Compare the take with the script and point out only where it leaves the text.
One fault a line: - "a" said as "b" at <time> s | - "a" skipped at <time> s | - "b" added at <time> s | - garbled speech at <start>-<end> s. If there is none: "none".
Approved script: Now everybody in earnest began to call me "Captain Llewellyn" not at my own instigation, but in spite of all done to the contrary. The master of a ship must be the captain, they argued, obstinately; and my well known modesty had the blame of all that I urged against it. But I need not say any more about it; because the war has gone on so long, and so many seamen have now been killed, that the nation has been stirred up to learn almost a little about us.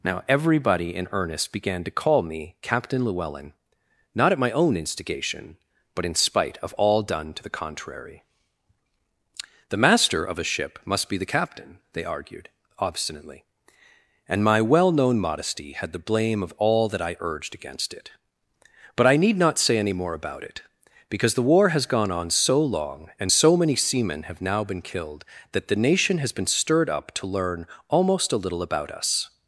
none